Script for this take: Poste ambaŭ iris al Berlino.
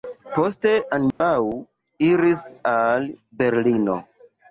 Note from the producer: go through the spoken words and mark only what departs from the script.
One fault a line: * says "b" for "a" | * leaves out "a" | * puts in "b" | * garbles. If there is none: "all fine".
all fine